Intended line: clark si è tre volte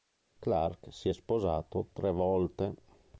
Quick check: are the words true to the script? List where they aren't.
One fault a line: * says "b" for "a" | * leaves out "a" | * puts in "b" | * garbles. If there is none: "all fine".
* puts in "sposato"